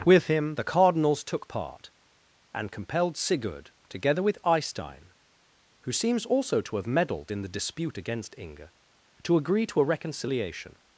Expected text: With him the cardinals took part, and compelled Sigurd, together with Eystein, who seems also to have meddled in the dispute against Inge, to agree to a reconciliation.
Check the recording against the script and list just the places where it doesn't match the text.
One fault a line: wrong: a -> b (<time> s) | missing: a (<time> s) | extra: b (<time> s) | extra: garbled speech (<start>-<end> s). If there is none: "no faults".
no faults